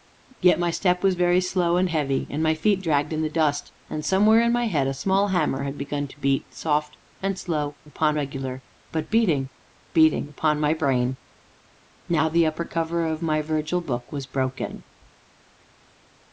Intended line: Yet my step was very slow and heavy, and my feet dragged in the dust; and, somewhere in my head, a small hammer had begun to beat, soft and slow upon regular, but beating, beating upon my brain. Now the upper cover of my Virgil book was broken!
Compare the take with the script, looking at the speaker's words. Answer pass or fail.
pass